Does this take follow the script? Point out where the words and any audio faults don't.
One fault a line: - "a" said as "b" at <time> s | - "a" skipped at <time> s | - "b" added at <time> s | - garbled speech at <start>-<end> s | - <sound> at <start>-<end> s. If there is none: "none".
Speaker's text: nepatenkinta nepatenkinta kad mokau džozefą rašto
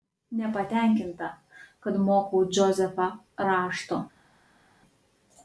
- "nepatenkinta" skipped at 1.3 s